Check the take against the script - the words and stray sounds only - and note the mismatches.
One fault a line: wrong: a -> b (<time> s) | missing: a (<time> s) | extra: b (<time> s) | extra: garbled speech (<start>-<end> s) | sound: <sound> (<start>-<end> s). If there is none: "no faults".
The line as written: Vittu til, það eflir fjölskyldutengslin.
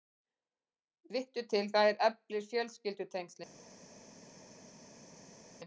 no faults